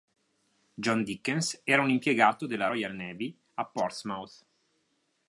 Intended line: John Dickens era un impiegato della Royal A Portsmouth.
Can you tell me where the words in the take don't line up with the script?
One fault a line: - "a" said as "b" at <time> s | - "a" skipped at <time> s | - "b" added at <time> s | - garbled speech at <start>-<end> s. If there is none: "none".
- "Navy" added at 2.9 s